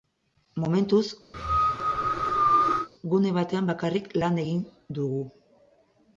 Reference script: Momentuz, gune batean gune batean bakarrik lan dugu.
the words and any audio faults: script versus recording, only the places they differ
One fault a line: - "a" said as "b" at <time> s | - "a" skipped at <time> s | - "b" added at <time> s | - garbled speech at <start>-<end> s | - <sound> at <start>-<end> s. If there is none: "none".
- cough at 1.3-2.9 s
- "gune batean" skipped at 3.7 s
- "egin" added at 4.5 s